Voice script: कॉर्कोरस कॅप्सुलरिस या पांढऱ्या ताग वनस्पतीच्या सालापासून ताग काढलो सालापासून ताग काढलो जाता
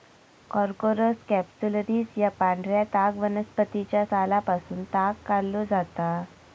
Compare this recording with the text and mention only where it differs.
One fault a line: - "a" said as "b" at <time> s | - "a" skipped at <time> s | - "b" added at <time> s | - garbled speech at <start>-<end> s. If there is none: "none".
- "सालापासून ताग काढलो" skipped at 5.6 s